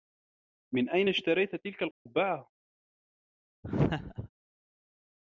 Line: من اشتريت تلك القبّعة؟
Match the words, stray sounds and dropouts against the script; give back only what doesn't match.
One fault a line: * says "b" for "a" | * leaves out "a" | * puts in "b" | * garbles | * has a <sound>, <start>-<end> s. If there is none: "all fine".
* puts in "أين"
* has a dropout, 1.9-2.1 s
* has a laugh, 3.6-4.3 s